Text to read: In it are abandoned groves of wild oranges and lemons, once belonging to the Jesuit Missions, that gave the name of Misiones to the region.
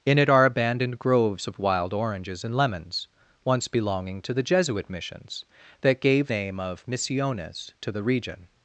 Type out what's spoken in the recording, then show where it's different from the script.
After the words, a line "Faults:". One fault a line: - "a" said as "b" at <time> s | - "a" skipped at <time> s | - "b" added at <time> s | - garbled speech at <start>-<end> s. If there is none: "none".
In it are abandoned groves of wild oranges and lemons, once belonging to the Jesuit Missions, that gave name of Misiones to the region.
Faults:
- "the" skipped at 6.3 s